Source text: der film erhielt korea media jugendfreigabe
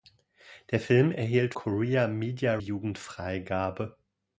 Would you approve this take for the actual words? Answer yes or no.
yes